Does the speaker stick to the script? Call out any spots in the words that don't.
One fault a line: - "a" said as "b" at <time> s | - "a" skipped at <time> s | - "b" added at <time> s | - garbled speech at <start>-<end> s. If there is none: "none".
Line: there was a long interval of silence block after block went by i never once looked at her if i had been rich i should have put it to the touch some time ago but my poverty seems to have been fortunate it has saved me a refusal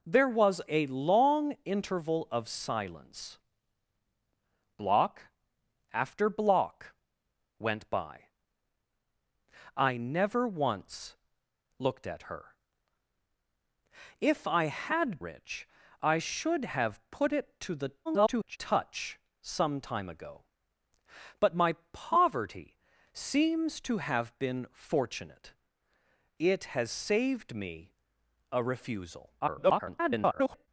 - "been" skipped at 15.2 s
- garbled speech at 18.1-18.6 s
- garbled speech at 29.4-30.7 s